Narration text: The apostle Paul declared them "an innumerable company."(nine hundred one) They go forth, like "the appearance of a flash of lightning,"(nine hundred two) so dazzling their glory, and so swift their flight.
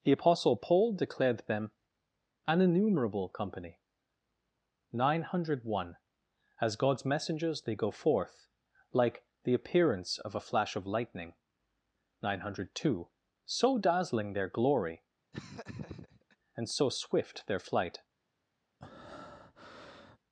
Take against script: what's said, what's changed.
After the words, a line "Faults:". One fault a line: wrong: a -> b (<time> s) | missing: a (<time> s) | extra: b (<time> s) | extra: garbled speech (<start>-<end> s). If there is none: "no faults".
The apostle Paul declared them "an innumerable company."(nine hundred one) As God's messengers they go forth, like "the appearance of a flash of lightning,"(nine hundred two) so dazzling their glory, and so swift their flight.
Faults:
extra: As God's messengers (6.6 s)